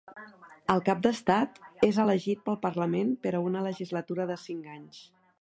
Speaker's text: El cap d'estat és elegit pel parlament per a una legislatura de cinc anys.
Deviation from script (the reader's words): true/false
false